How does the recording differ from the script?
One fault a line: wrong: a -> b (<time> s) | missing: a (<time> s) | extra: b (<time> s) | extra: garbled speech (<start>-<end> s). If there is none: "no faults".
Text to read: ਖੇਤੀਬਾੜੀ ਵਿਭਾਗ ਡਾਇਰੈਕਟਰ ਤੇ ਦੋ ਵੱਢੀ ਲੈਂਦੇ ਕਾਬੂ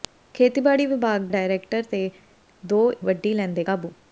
no faults